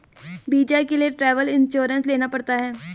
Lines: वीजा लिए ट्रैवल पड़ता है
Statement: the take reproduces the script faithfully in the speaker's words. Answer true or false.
false